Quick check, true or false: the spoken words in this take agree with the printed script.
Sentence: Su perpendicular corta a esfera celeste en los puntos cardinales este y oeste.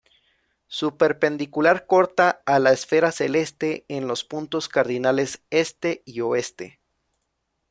false